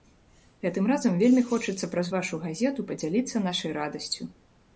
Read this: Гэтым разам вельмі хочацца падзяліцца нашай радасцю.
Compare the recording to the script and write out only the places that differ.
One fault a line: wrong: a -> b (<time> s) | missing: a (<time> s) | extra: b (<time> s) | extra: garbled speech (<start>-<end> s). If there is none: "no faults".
extra: праз вашу газету (1.9 s)